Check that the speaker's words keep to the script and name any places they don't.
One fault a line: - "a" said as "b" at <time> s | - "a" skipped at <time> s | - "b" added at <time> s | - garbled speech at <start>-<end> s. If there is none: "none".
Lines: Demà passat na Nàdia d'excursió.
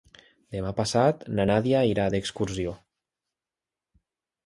- "irà" added at 1.9 s